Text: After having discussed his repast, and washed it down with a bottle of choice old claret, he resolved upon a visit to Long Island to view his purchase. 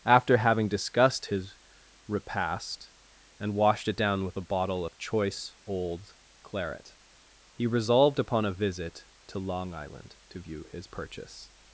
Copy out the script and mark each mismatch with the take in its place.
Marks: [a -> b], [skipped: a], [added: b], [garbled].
After having discussed his repast, and washed it down with a bottle of choice old claret, he resolved upon a visit to Long Island to view his purchase.